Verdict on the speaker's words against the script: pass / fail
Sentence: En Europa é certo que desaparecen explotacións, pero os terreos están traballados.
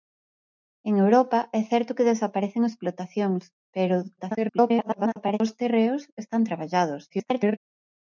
fail